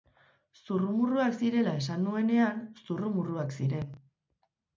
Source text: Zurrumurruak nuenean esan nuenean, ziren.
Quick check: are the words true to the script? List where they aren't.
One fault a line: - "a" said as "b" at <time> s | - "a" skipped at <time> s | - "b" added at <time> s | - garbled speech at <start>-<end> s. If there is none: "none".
- "nuenean" said as "zirela" at 1.4 s
- "zurrumurruak" added at 2.8 s